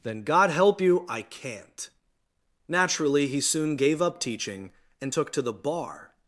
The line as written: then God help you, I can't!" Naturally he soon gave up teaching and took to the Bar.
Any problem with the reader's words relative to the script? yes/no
no